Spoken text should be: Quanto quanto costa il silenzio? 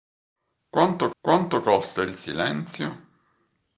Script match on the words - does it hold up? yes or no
yes